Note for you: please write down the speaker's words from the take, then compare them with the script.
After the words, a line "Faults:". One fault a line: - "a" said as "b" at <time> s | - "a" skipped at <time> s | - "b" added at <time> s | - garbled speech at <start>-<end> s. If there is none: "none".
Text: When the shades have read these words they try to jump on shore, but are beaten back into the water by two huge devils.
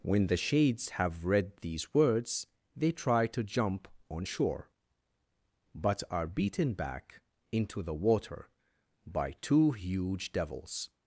When the shades have read these words they try to jump on shore, but are beaten back into the water by two huge devils.
Faults:
none